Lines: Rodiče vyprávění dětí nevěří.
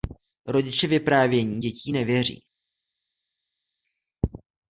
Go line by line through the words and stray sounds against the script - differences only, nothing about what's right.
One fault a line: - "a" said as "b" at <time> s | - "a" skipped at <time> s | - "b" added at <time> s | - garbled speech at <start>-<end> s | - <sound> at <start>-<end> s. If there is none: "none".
none